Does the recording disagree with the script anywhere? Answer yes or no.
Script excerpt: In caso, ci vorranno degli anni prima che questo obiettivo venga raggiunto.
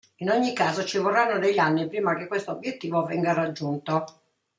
yes